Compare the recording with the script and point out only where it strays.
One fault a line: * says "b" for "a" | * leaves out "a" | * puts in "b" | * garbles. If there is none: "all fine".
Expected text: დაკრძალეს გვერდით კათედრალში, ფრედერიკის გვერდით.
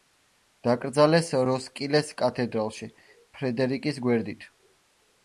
* says "როსკილეს" for "გვერდით"